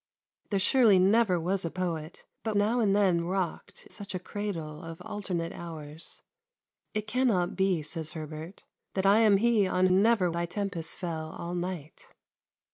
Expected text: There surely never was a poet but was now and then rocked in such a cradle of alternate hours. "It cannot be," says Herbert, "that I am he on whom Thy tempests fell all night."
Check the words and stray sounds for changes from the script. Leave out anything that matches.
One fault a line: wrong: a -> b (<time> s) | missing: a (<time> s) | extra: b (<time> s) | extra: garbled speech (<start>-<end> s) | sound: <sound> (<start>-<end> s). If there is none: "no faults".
missing: was (2.5 s)
missing: in (3.9 s)
wrong: whom -> never (9.9 s)